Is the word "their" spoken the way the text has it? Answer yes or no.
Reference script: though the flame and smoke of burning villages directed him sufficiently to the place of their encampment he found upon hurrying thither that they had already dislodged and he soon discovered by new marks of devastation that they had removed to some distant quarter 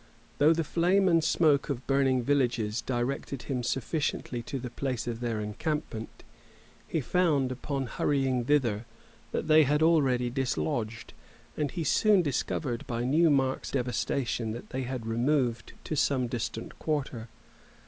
yes